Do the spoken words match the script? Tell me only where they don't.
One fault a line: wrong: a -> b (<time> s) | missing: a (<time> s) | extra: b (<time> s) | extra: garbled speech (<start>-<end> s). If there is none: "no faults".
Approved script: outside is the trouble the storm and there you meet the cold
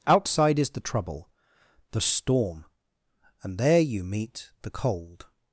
no faults